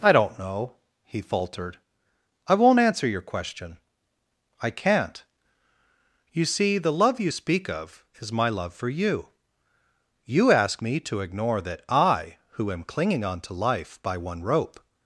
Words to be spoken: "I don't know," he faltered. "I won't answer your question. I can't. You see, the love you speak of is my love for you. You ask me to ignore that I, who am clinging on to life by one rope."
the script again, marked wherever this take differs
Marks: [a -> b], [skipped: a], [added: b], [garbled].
"I don't know," he faltered. "I won't answer your question. I can't. You see, the love you speak of is my love for you. You ask me to ignore that I, who am clinging on to life by one rope."